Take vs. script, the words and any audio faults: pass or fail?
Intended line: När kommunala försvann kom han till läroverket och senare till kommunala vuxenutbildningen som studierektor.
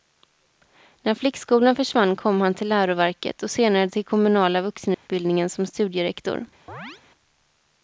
fail